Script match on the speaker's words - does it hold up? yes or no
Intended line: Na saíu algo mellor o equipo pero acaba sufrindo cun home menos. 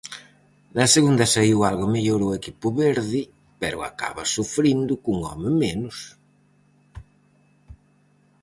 no